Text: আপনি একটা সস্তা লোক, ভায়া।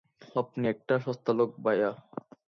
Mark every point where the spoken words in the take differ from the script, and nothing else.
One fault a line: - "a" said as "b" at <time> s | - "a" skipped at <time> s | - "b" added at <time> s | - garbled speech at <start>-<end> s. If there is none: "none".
none